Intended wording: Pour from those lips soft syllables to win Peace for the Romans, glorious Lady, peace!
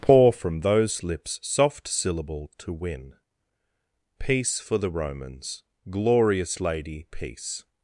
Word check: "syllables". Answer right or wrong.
wrong